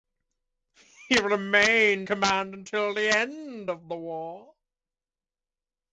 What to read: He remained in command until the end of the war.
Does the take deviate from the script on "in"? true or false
true